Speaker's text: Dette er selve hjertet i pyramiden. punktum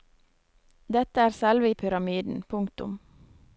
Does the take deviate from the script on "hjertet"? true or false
true